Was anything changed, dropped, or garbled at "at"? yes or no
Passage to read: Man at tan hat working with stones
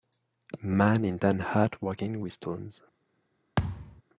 yes